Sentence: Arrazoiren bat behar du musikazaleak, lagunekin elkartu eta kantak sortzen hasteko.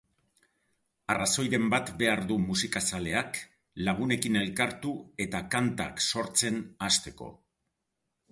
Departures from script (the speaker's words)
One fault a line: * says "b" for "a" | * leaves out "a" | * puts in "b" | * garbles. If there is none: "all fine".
all fine